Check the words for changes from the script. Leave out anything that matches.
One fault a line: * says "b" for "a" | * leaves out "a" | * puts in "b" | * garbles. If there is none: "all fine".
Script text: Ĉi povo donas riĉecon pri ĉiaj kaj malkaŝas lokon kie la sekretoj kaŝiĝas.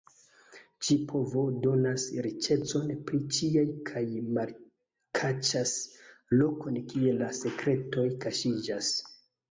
all fine